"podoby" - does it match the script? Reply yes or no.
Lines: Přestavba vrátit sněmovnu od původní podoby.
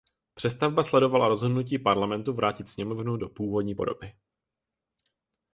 yes